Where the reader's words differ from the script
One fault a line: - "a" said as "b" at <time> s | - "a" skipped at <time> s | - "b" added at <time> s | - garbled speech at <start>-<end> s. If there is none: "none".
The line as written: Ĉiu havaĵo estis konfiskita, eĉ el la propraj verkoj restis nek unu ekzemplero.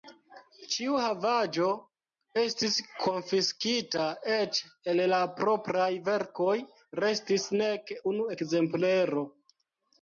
none